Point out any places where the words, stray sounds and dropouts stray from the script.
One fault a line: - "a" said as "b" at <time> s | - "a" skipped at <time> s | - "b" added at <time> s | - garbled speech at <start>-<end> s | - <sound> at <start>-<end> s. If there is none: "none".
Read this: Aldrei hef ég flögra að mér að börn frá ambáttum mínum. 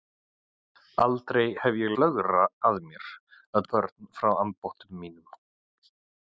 none